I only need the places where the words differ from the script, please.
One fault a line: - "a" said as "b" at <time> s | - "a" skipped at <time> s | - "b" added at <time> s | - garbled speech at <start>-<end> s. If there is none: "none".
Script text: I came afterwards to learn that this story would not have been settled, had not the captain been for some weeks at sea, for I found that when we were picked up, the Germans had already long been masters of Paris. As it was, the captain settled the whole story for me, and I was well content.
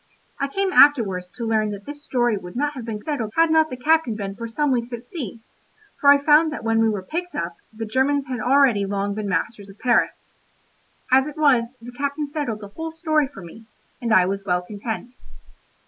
none